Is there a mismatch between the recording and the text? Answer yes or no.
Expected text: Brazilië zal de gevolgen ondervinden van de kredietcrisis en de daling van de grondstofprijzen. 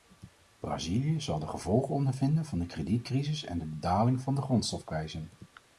no